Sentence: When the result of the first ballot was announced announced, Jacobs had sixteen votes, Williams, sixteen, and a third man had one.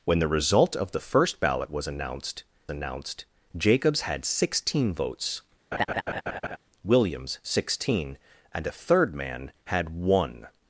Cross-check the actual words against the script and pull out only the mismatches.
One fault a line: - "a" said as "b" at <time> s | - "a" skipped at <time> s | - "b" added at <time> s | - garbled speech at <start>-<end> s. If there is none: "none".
none